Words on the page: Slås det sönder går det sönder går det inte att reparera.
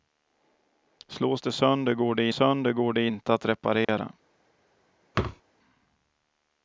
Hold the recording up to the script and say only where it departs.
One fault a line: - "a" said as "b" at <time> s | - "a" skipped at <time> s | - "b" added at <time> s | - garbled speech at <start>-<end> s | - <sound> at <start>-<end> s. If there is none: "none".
- dropout at 3.8-3.9 s
- thud at 5.1-5.4 s